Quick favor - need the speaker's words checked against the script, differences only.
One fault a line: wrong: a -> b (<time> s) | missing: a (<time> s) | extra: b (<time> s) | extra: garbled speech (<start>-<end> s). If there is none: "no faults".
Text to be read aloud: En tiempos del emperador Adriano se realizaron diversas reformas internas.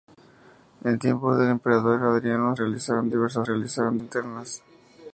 missing: se (2.6 s)
wrong: reformas -> realizaron (3.4 s)